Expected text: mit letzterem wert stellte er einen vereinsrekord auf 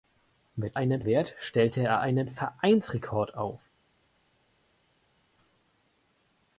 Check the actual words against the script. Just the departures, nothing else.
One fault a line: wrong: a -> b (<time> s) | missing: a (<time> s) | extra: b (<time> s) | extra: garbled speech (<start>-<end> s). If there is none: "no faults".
wrong: letzterem -> einen (0.7 s)